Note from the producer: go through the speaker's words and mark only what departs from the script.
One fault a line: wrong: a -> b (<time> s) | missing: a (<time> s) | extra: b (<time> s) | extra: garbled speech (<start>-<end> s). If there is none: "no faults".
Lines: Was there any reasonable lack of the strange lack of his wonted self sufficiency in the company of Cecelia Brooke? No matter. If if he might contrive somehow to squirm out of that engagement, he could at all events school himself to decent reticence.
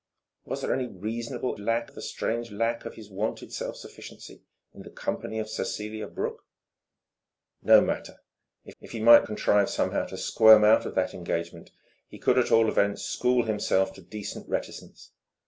no faults